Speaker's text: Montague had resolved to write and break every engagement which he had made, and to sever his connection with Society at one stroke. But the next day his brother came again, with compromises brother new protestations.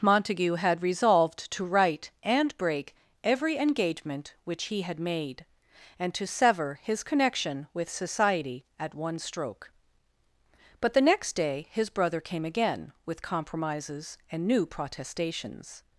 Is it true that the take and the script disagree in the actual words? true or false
true